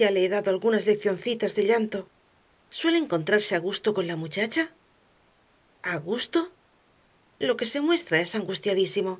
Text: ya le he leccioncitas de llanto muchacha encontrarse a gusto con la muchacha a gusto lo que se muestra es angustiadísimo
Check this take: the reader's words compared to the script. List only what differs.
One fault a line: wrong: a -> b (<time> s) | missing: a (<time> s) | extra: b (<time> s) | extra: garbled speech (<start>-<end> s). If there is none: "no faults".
extra: dado algunas (0.3 s)
wrong: muchacha -> suele (2.8 s)